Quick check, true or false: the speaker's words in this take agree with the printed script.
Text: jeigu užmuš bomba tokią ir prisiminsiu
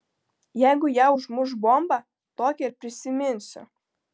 false